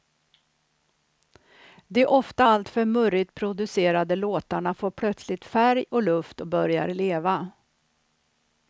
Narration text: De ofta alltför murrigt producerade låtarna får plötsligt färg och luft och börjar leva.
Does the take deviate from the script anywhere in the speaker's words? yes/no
no